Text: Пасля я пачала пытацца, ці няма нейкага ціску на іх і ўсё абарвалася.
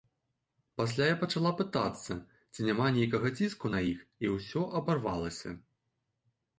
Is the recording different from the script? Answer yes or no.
no